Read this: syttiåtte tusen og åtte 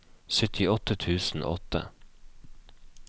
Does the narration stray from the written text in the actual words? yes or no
no